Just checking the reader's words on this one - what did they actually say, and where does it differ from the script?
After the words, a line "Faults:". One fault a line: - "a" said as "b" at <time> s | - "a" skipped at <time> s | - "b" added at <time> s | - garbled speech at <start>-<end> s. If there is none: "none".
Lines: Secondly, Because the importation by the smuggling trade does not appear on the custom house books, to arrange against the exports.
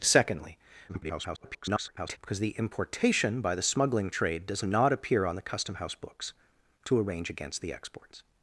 Secondly, [garbled] Because the importation by the smuggling trade does not appear on the custom house books, to arrange against the exports.
Faults:
- garbled speech at 0.9-2.2 s